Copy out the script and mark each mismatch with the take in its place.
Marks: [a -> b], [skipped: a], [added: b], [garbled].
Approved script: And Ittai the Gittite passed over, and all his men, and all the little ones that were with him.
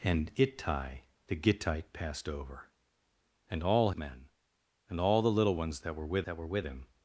And Ittai the Gittite passed over, and all [skipped: his] men, and all the little ones that were with [added: that were with] him.